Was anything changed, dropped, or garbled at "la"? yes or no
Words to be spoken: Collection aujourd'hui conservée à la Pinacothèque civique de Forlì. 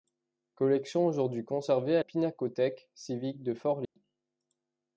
yes